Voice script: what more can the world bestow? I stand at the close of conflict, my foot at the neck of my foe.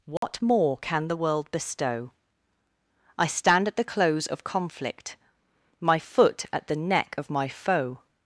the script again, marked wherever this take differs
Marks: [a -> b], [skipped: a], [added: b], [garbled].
what more can the world bestow? I stand at the close of conflict, my foot at the neck of my foe.